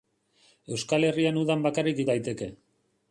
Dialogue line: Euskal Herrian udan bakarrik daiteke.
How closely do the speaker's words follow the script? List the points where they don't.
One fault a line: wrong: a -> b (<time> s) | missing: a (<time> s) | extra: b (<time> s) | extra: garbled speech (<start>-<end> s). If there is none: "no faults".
no faults